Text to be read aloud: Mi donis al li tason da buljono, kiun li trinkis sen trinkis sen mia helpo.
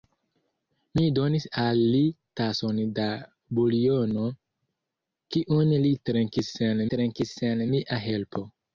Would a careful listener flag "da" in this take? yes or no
no